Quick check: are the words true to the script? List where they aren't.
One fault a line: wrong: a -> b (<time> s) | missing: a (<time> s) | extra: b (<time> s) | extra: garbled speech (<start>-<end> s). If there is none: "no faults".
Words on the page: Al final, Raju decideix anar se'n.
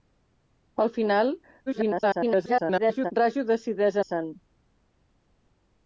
extra: garbled speech (1.7-3.1 s)
missing: anar (4.0 s)